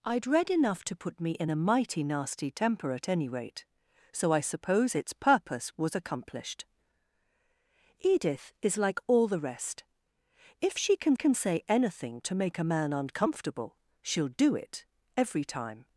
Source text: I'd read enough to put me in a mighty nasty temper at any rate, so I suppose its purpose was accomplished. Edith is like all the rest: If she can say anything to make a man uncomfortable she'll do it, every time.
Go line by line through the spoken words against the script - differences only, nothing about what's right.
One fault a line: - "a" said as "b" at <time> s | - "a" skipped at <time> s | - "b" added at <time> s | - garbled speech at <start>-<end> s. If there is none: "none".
- "can" added at 11.1 s